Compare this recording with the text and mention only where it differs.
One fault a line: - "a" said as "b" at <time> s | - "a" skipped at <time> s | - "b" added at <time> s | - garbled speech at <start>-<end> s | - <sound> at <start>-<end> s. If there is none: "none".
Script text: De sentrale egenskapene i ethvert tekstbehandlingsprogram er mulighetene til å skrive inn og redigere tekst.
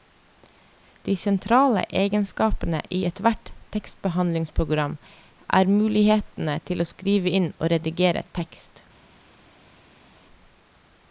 none